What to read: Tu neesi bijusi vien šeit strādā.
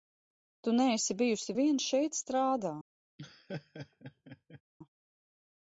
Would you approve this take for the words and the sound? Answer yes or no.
no